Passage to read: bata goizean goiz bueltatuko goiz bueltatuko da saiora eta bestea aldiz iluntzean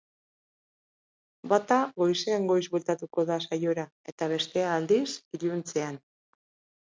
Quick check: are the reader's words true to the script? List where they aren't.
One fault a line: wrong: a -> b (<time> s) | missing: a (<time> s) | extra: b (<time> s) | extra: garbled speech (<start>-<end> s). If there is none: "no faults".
missing: goiz bueltatuko (3.2 s)